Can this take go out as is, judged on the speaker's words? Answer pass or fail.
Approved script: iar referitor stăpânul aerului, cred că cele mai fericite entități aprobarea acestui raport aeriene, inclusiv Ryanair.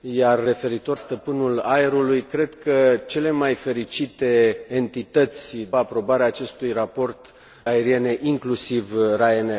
pass